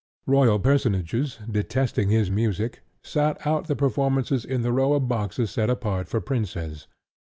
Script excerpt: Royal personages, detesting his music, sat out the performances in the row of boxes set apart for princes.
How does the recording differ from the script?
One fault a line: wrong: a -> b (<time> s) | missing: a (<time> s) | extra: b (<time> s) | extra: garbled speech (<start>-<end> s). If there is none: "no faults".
no faults